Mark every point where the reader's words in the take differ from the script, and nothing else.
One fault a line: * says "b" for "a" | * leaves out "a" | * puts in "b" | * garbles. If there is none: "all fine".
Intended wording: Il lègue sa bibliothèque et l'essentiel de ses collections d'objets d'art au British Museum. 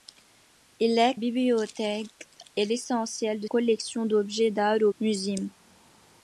* leaves out "sa"
* leaves out "ses"
* leaves out "British"